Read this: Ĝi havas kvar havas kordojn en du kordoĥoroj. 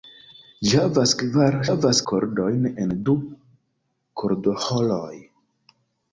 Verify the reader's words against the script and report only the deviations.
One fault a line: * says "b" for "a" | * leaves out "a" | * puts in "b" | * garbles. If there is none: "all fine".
all fine